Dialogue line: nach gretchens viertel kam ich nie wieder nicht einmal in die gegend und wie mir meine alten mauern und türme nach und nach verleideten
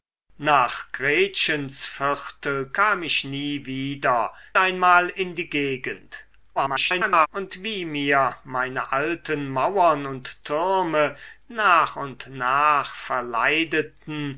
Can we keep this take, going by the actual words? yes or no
no